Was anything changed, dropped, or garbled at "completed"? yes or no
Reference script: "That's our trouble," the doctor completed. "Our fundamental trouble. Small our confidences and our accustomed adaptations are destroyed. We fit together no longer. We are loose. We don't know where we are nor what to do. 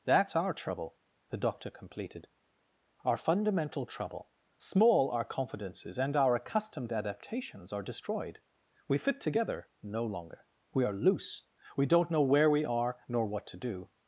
no